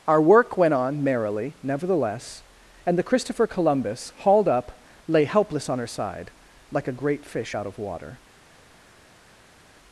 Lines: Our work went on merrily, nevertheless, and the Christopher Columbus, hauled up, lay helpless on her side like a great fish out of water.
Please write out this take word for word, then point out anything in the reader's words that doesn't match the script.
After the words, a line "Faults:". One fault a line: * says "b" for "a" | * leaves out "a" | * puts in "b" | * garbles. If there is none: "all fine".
Our work went on merrily, nevertheless, and the Christopher Columbus, hauled up, lay helpless on her side like a great fish out of water.
Faults:
all fine